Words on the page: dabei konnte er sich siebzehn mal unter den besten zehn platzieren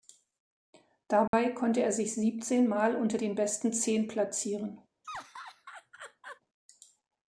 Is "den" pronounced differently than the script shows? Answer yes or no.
no